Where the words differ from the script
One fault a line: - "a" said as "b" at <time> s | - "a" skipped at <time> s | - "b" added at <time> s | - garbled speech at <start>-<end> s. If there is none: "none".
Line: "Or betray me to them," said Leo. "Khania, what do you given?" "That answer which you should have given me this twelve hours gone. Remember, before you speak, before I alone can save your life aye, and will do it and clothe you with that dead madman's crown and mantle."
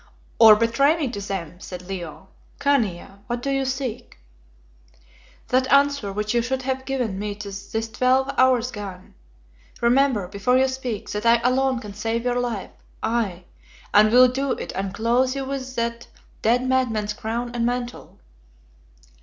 - "given" said as "seek" at 3.7 s
- "before" said as "that" at 11.1 s